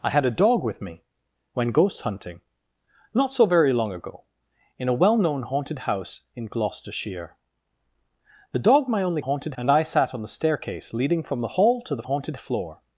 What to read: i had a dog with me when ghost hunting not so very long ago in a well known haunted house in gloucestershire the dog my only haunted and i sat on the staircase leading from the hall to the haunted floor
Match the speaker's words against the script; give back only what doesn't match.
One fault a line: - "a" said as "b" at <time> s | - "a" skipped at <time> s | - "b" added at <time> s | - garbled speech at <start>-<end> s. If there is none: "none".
none